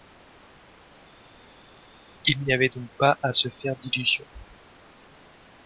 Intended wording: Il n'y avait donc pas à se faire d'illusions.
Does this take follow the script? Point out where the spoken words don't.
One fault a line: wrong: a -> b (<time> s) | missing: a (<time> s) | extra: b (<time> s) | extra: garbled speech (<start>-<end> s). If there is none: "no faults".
no faults